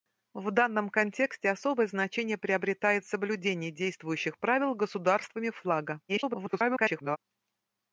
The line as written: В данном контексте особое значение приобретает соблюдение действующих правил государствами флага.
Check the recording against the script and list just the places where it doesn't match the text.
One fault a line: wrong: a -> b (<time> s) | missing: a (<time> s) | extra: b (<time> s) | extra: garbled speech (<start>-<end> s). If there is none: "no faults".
extra: garbled speech (6.1-7.2 s)